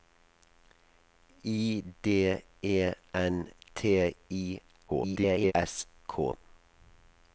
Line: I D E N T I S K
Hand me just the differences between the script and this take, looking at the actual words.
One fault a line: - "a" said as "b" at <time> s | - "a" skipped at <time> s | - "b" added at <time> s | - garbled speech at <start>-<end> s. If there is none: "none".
- garbled speech at 4.9-5.5 s